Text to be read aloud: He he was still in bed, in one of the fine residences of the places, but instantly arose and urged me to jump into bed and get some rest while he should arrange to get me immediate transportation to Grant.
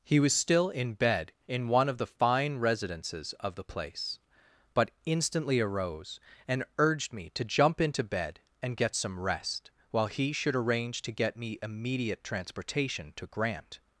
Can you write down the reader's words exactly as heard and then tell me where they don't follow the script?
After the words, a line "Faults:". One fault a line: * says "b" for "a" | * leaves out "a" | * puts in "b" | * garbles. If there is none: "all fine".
He was still in bed, in one of the fine residences of the place, but instantly arose and urged me to jump into bed and get some rest while he should arrange to get me immediate transportation to Grant.
Faults:
* leaves out "he"
* says "place" for "places"